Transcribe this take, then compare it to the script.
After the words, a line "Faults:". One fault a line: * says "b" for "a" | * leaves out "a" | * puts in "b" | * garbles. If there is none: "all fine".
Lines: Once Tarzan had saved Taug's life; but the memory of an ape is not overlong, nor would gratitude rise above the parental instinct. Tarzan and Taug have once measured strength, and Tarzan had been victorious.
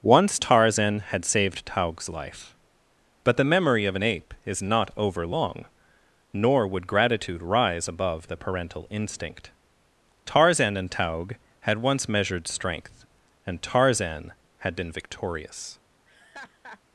Once Tarzan had saved Taug's life; but the memory of an ape is not overlong, nor would gratitude rise above the parental instinct. Tarzan and Taug had once measured strength, and Tarzan had been victorious.
Faults:
* says "had" for "have"